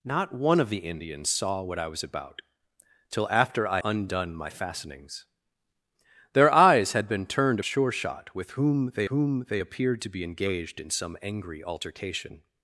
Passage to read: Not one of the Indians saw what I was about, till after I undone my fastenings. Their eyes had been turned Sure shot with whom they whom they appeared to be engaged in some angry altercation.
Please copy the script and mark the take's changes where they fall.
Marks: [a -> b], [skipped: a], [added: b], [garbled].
Not one of the Indians saw what I was about, till after I undone my fastenings. Their eyes had been turned Sure shot with whom they whom they appeared to be engaged in some angry altercation.